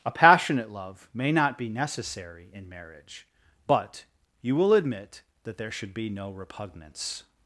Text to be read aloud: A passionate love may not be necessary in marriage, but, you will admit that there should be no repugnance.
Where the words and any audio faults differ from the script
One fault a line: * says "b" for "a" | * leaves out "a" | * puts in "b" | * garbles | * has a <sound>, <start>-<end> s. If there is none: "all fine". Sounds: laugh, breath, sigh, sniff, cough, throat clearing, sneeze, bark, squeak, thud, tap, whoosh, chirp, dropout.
all fine